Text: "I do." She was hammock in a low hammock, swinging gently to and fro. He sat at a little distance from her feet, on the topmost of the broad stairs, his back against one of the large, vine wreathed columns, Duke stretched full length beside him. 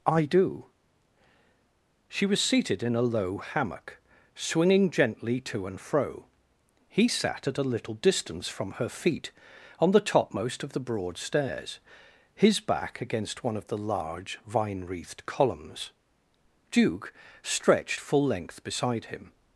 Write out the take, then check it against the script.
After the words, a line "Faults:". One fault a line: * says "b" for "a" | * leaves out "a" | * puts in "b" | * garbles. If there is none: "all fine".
"I do." She was seated in a low hammock, swinging gently to and fro. He sat at a little distance from her feet, on the topmost of the broad stairs, his back against one of the large, vine wreathed columns, Duke stretched full length beside him.
Faults:
* says "seated" for "hammock"